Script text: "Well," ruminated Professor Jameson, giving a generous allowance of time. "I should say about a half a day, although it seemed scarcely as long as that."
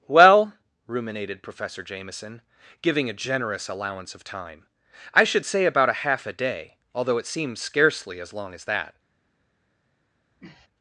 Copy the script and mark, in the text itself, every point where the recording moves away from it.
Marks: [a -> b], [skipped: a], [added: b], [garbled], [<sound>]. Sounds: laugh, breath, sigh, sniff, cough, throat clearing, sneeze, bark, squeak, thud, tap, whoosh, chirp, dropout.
"Well," ruminated Professor Jameson, giving a generous allowance of time. "I should say about a half a day, although it [seemed -> seems] scarcely as long as that." [sniff]